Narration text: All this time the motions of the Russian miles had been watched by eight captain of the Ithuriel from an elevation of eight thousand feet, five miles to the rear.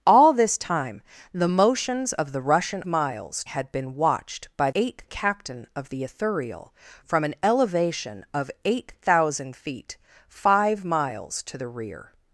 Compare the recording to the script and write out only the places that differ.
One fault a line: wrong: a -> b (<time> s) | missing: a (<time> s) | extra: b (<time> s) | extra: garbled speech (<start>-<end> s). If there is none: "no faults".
no faults